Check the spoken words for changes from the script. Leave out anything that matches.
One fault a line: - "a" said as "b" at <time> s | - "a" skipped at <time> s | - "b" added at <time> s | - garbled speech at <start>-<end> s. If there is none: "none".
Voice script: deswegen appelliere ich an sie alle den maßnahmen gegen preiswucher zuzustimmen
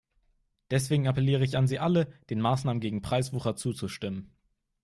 none